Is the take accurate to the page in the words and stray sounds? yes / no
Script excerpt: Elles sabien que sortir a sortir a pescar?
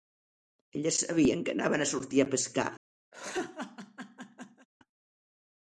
no